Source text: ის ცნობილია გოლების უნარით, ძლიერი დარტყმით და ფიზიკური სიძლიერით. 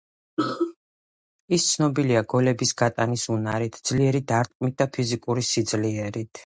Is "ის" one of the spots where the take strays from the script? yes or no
no